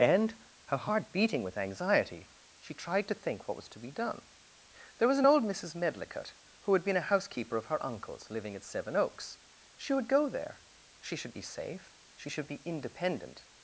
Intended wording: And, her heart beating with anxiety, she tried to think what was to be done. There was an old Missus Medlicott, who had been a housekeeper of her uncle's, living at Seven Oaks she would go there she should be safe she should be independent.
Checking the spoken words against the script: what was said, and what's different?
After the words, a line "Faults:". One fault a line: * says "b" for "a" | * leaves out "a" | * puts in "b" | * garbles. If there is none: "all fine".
And, her heart beating with anxiety, she tried to think what was to be done. There was an old Missus Medlicott, who had been a housekeeper of her uncle's, living at Seven Oaks she would go there she should be safe she should be independent.
Faults:
all fine